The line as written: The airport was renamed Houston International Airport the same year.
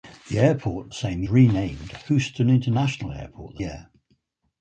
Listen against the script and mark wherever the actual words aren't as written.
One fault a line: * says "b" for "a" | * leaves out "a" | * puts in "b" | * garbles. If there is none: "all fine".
* says "same" for "was"
* leaves out "same"